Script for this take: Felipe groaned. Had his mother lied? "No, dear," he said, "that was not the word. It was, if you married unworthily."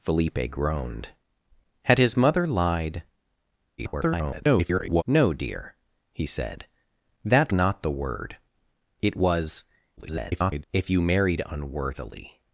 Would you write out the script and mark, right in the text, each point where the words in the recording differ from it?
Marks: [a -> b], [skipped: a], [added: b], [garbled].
Felipe groaned. Had his mother lied? [garbled] "No, dear," he said, "that [skipped: was] not the word. It was, [garbled] if you married unworthily."